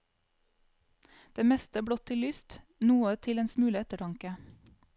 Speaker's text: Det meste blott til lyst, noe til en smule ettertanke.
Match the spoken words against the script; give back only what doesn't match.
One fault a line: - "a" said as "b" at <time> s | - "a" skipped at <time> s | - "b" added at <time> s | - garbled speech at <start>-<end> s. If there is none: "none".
none